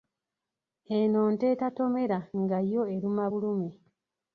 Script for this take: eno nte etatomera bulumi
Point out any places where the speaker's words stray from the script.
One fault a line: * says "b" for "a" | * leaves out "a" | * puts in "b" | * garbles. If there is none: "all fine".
* puts in "nga yo eruma"